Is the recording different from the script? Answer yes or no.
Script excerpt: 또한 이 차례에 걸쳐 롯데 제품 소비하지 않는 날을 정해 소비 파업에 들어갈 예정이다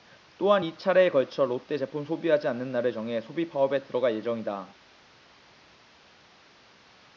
no